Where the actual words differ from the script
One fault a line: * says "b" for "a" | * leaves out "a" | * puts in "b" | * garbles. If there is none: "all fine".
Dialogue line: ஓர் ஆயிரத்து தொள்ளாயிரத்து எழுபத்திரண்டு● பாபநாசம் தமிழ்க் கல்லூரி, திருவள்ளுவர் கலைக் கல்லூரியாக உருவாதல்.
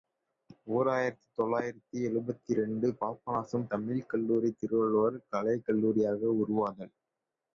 all fine